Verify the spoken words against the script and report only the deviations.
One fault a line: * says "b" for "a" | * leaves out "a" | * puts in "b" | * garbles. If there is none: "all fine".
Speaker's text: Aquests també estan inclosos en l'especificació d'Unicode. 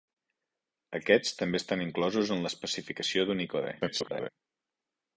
* garbles